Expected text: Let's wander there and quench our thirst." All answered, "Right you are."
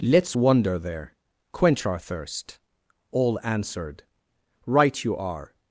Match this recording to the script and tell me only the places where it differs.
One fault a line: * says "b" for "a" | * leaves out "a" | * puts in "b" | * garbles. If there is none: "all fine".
* leaves out "and"